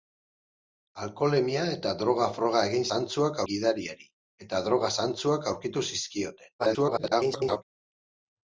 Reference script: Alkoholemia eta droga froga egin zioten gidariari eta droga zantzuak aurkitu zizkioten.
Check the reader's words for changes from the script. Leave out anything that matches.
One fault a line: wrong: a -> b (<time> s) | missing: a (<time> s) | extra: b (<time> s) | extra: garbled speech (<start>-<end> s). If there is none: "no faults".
wrong: zioten -> zantzuak (2.9 s)
extra: garbled speech (6.6-7.6 s)